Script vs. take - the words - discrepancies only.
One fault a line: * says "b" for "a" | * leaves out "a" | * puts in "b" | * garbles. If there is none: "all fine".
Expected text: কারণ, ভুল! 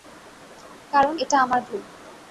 * puts in "এটা আমার"